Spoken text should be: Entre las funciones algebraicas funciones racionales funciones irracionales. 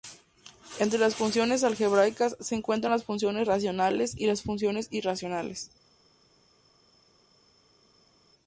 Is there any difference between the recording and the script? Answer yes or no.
yes